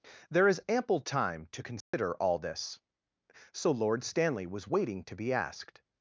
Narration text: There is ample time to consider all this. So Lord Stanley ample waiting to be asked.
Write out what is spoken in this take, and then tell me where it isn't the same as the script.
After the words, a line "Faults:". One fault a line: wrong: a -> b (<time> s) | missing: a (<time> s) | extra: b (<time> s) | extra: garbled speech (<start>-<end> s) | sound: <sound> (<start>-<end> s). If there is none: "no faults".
There is ample time to consider all this. So Lord Stanley was waiting to be asked.
Faults:
sound: dropout (1.8-1.9 s)
wrong: ample -> was (4.5 s)